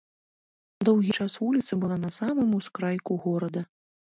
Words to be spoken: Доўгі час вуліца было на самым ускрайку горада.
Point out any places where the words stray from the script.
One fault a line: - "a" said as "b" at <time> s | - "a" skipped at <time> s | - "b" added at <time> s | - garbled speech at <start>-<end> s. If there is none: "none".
- "было" said as "была" at 1.8 s